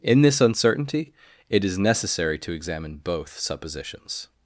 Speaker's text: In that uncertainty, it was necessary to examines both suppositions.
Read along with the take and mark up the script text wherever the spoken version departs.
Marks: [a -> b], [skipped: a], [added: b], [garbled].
In [that -> this] uncertainty, it [was -> is] necessary to [examines -> examine] both suppositions.